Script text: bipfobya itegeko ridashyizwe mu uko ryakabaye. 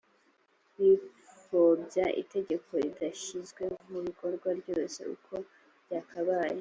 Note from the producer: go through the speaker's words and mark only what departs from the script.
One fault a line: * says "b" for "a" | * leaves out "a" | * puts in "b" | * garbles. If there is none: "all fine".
* puts in "bikorwa ryose"